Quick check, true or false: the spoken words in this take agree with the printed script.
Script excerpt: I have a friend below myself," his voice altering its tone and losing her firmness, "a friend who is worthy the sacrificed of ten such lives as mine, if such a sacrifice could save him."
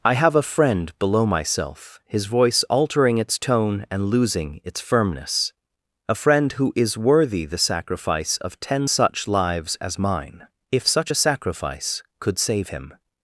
false